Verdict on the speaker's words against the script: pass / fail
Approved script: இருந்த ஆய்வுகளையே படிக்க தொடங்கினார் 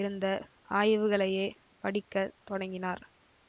pass